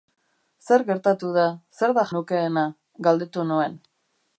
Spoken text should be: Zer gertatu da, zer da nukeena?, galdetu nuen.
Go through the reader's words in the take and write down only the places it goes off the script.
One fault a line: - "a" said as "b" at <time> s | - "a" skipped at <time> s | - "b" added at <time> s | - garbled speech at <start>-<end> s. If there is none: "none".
none